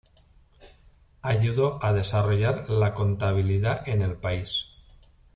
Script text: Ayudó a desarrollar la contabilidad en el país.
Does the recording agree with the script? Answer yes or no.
yes